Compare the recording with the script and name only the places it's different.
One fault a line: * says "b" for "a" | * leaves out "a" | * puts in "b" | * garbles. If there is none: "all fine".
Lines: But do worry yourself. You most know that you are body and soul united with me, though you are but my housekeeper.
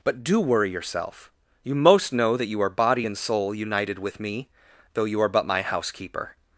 all fine